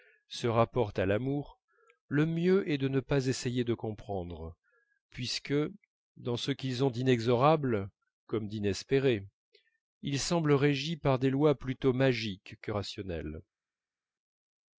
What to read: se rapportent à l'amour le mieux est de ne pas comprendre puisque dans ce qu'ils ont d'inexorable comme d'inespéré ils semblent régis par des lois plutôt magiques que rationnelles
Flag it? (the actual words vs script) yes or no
yes